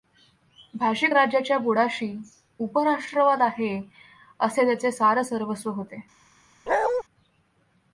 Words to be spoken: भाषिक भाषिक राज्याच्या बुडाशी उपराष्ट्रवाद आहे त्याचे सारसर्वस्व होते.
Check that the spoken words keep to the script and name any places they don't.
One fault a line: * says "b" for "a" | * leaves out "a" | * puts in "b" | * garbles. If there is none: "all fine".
* leaves out "भाषिक"
* puts in "असे"